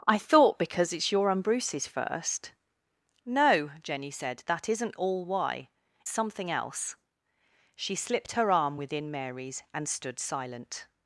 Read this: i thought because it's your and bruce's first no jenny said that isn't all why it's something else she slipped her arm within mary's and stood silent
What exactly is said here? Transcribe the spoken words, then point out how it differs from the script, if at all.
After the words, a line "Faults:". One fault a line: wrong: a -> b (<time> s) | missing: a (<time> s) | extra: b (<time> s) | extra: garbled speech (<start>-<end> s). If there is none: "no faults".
i thought because it's your and bruce's first no jenny said that isn't all why something else she slipped her arm within mary's and stood silent
Faults:
missing: it's (5.7 s)